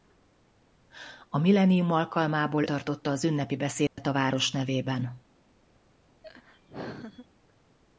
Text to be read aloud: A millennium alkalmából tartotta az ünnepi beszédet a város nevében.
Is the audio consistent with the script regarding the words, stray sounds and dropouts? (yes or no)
no